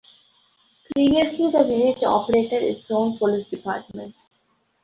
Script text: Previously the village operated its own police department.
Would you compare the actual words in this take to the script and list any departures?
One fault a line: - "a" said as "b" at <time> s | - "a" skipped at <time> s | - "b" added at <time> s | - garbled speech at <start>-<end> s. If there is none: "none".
none